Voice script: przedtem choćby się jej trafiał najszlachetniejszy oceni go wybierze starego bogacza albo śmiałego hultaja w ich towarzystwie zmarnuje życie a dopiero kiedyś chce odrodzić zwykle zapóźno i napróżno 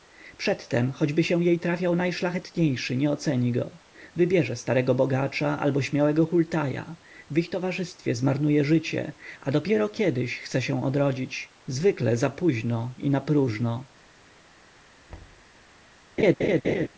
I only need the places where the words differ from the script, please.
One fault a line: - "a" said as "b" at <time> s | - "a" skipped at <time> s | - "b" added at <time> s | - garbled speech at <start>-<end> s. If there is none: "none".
- "nie" added at 3.0 s
- "się" added at 10.6 s